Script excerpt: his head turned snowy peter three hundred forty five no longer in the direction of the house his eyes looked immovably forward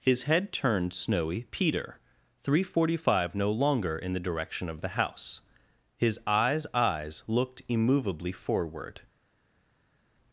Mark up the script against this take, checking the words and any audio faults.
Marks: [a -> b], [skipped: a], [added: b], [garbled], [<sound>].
his head turned snowy peter three hundred forty five no longer in the direction of the house his eyes [added: eyes] looked immovably forward